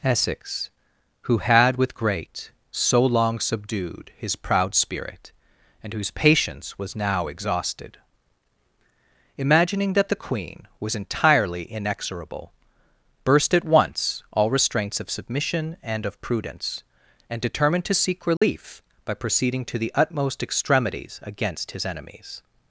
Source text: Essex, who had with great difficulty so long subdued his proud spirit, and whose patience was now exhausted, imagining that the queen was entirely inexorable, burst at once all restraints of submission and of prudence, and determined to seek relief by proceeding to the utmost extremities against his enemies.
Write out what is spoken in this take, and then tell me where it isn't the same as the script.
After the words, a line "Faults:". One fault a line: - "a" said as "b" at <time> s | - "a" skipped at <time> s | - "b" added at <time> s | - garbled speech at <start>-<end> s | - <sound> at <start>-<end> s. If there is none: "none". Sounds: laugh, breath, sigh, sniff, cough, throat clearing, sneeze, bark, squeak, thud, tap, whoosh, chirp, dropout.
Essex, who had with great so long subdued his proud spirit, and whose patience was now exhausted, imagining that the queen was entirely inexorable, burst at once all restraints of submission and of prudence, and determined to seek relief by proceeding to the utmost extremities against his enemies.
Faults:
- "difficulty" skipped at 2.5 s
- dropout at 18.4-18.4 s